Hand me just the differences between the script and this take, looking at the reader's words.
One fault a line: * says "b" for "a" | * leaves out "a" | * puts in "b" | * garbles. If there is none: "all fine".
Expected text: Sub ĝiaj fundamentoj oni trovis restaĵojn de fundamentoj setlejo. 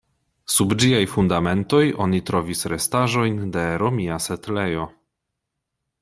* says "romia" for "fundamentoj"